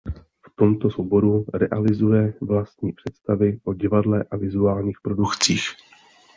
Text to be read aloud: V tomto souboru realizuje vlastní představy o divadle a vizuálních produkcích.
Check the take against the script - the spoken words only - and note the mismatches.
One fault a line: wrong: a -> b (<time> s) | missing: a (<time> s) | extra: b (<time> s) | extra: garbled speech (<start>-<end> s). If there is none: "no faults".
no faults